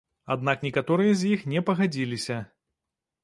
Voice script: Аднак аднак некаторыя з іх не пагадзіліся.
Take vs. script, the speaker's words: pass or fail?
fail